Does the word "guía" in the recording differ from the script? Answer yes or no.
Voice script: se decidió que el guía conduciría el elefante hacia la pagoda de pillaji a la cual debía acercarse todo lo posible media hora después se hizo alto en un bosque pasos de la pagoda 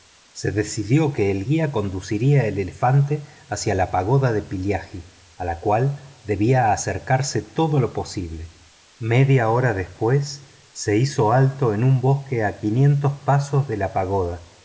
no